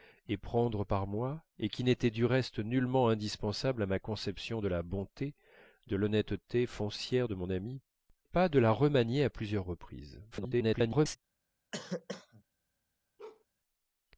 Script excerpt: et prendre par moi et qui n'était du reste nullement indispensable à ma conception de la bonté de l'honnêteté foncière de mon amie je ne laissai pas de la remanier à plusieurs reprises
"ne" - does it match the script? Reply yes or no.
no